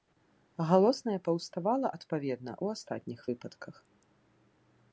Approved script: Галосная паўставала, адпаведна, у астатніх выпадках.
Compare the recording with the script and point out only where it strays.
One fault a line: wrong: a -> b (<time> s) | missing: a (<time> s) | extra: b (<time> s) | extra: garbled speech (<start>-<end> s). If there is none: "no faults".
no faults